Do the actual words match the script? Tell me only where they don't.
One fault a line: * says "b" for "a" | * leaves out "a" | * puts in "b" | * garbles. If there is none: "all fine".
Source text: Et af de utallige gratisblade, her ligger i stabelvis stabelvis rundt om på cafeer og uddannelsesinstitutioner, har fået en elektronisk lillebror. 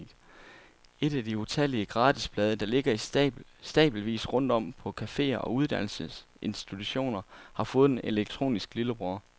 * says "der" for "her"
* leaves out "stabelvis"